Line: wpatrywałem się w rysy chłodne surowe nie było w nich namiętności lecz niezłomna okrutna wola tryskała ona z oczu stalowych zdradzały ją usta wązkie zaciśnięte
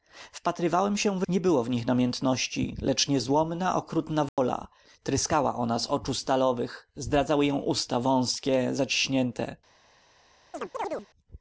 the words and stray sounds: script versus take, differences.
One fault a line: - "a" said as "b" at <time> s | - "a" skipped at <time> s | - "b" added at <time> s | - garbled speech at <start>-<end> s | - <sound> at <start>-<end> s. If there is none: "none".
- "rysy chłodne surowe" skipped at 1.2 s
- dropout at 4.3-4.4 s
- chirp at 10.5-11.1 s